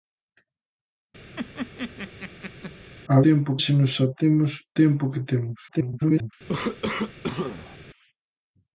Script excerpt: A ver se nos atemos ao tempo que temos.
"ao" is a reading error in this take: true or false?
true